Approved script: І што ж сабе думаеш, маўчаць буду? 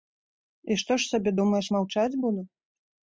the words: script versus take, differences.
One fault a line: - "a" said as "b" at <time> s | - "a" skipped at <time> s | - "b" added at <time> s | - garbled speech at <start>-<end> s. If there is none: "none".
none